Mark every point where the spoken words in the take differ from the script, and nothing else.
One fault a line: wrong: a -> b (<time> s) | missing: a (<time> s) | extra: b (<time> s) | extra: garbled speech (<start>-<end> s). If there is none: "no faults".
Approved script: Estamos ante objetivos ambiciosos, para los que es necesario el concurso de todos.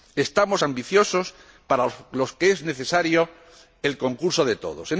missing: ante objetivos (0.6 s)